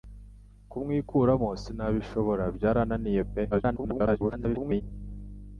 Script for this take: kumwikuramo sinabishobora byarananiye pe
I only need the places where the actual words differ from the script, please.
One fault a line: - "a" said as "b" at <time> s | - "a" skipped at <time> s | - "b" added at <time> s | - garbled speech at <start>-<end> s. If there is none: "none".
- garbled speech at 3.5-4.8 s